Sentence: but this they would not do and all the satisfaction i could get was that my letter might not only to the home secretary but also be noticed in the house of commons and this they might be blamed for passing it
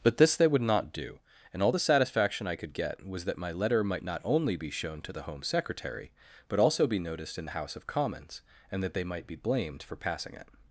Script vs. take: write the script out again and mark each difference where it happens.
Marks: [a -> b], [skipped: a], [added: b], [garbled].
but this they would not do and all the satisfaction i could get was that my letter might not only [added: be shown] to the home secretary but also be noticed in the house of commons and [this -> that] they might be blamed for passing it